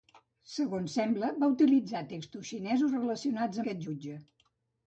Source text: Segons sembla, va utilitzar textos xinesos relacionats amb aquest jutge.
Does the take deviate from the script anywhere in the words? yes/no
yes